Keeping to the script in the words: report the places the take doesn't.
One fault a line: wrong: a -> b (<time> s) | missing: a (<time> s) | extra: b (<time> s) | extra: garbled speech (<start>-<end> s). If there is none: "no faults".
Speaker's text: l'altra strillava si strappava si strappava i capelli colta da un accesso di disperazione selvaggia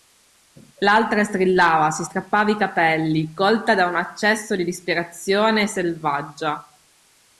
missing: si strappava (2.5 s)